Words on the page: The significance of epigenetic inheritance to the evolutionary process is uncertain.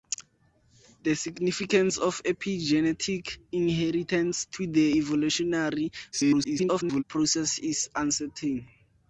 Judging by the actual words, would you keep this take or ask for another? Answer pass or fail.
fail